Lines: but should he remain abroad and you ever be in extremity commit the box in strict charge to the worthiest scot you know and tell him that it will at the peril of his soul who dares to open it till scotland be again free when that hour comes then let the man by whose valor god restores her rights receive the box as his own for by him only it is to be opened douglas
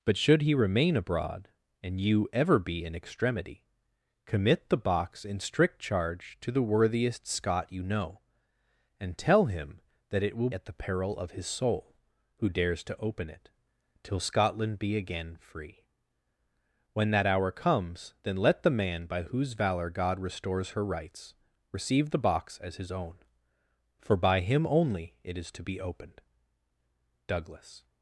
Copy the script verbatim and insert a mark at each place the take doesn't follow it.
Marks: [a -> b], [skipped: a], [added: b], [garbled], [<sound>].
but should he remain abroad and you ever be in extremity commit the box in strict charge to the worthiest scot you know and tell him that it will at the peril of his soul who dares to open it till scotland be again free when that hour comes then let the man by whose valor god restores her rights receive the box as his own for by him only it is to be opened douglas